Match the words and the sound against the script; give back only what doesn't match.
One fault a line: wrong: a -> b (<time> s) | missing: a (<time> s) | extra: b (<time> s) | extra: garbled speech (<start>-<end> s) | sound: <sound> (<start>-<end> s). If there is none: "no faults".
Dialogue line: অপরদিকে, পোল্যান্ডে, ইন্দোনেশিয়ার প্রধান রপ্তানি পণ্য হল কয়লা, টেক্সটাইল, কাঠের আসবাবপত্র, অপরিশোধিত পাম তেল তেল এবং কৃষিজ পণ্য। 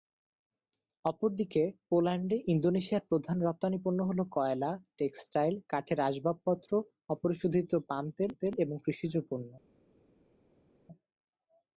no faults